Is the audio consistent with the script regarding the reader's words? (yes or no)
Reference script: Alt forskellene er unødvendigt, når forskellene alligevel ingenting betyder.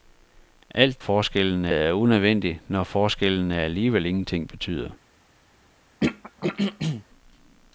yes